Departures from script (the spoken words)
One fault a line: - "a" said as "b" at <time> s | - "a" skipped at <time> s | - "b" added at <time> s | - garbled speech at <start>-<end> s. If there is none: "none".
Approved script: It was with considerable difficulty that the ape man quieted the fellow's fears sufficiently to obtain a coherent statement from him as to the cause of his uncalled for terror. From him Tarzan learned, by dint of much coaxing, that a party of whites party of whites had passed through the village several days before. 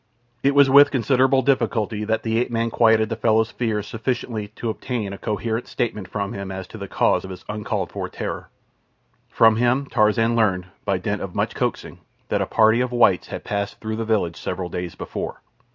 - "party of whites" skipped at 13.3 s